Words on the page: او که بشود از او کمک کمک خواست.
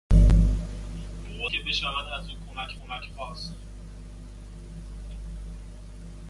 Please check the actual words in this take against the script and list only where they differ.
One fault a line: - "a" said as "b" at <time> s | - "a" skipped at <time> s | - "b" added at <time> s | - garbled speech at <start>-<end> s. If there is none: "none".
none